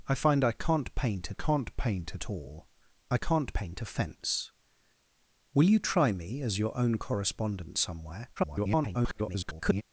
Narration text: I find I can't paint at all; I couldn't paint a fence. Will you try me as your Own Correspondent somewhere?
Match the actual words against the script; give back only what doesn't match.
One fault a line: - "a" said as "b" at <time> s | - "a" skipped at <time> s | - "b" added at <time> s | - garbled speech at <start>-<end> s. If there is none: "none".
- "can't paint" added at 1.3 s
- "couldn't" said as "can't" at 3.1 s
- garbled speech at 8.4-9.8 s